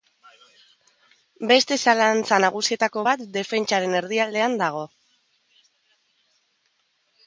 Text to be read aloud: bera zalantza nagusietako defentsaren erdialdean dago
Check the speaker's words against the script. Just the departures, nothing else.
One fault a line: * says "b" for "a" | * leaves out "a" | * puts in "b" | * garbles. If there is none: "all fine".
* says "beste" for "bera"
* puts in "bat"